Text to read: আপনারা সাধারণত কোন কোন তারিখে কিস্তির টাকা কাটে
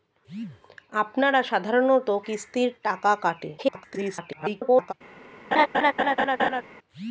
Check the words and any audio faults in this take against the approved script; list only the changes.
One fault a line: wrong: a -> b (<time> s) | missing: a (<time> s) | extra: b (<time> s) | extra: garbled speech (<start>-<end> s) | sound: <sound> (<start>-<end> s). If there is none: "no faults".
missing: কোন কোন তারিখে (2.1 s)
extra: garbled speech (3.6-4.9 s)
sound: laugh (5.5-6.6 s)